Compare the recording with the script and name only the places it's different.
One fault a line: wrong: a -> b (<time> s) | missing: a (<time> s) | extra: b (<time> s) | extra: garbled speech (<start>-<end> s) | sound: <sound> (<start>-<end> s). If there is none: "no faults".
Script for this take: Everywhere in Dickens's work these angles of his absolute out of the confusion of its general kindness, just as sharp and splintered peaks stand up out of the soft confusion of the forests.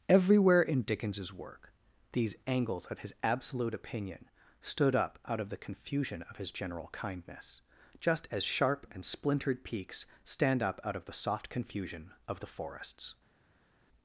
extra: opinion stood up (3.7 s)
wrong: its -> his (6.3 s)